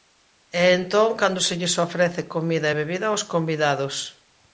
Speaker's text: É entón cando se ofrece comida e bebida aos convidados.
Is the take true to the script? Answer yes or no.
no